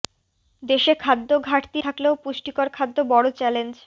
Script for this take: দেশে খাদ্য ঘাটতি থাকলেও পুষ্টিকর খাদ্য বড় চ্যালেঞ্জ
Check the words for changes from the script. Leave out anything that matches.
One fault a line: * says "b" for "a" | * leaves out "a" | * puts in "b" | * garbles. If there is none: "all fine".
all fine